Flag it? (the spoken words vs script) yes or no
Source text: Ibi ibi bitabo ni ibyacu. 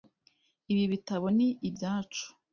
yes